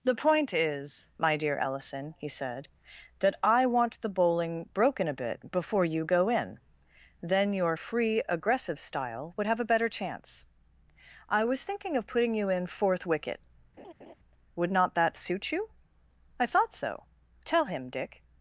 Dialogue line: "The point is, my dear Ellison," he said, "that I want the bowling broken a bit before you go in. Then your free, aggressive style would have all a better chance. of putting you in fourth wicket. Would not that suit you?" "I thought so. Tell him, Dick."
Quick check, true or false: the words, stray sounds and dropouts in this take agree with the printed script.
false